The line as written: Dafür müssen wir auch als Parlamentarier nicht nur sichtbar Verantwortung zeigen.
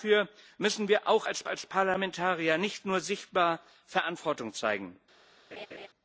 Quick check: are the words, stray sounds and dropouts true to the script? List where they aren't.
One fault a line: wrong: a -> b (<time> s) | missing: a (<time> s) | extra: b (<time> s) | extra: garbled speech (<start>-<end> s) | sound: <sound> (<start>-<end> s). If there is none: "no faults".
extra: als (1.5 s)
sound: laugh (5.5-5.9 s)